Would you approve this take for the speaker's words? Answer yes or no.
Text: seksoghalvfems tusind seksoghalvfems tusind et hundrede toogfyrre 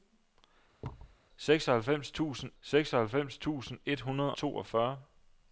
yes